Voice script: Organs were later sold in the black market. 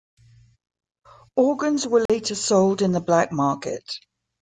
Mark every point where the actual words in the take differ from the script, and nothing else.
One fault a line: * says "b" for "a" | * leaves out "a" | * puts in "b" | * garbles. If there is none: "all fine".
all fine